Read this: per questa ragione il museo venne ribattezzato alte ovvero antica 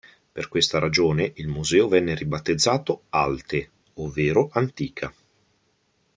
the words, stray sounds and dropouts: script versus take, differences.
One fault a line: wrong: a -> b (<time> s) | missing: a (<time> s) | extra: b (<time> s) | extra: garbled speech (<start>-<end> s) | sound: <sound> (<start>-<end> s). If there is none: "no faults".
no faults